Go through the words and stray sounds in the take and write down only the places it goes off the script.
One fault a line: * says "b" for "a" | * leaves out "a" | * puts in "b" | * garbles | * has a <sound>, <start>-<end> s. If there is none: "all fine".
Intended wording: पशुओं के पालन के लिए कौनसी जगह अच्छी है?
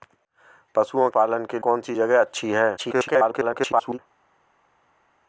* leaves out "के"
* leaves out "लिए"
* garbles